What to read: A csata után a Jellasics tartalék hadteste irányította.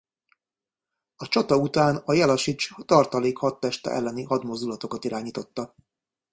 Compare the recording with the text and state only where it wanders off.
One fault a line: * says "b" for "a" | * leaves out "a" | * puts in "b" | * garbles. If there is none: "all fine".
* puts in "elleni hadmozdulatokat"